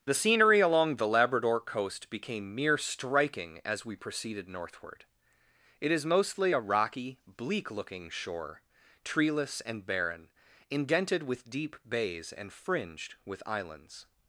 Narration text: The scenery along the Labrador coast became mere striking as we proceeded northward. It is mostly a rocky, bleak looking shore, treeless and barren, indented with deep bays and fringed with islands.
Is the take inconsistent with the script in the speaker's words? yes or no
no